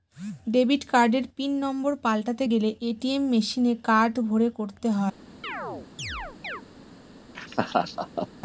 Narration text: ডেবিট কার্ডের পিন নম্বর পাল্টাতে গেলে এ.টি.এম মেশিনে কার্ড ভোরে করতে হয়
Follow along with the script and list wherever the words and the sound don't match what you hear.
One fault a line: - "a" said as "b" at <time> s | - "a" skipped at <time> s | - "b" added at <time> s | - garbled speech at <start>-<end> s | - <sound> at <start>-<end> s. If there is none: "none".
- chirp at 5.4-6.6 s
- laugh at 7.3-8.3 s